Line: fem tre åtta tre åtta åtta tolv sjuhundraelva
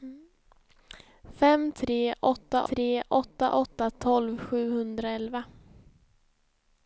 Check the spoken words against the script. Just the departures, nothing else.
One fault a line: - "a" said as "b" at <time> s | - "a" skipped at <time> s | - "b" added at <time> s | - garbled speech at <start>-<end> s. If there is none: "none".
none